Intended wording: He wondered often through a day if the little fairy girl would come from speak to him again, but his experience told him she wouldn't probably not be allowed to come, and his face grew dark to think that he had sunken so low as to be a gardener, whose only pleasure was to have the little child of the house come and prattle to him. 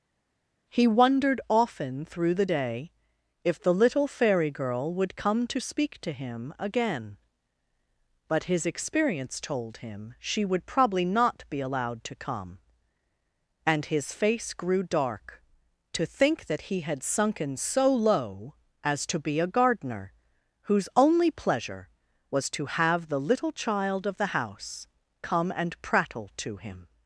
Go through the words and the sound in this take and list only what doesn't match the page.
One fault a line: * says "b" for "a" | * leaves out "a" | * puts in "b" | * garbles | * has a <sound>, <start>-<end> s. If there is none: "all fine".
* says "the" for "a"
* says "to" for "from"
* says "would" for "wouldn't"